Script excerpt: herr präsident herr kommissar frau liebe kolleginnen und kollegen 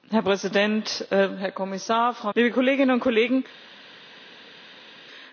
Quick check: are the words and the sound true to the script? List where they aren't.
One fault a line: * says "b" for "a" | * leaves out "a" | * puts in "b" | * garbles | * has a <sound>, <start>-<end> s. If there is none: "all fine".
all fine